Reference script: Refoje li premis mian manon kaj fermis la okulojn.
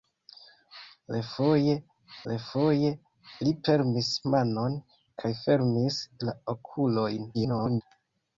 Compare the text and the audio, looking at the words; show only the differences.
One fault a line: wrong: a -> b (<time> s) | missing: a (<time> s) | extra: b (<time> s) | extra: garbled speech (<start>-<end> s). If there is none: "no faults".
extra: refoje (2.3 s)
missing: mian (4.1 s)
extra: garbled speech (7.3-7.8 s)